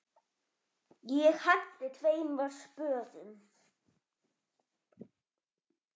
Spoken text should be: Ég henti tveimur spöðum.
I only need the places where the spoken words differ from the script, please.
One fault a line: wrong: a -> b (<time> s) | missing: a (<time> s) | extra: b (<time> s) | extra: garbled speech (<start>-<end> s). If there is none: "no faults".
no faults